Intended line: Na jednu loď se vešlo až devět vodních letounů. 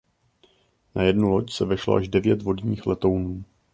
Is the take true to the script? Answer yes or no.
yes